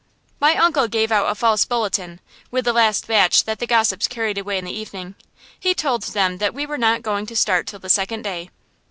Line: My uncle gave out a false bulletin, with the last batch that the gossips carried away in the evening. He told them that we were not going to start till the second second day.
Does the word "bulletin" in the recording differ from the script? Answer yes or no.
no